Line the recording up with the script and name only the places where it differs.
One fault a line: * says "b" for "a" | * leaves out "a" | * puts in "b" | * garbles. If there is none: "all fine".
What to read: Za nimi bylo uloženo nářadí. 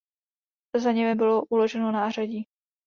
all fine